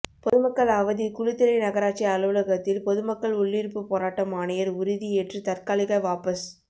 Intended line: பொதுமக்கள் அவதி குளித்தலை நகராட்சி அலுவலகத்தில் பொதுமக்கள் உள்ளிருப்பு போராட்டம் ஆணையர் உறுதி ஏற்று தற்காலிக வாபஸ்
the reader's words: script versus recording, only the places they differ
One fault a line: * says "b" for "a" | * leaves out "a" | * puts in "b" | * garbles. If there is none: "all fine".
all fine